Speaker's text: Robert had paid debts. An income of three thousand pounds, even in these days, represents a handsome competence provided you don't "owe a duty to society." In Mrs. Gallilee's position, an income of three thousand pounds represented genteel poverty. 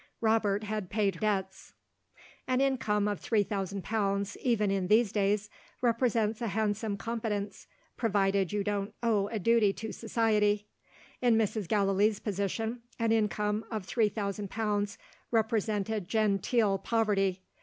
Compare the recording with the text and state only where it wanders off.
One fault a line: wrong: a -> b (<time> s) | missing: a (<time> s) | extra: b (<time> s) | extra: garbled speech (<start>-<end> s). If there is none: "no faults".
no faults